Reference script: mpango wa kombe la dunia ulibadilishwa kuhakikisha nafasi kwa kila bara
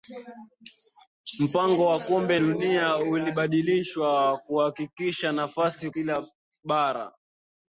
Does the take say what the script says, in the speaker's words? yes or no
no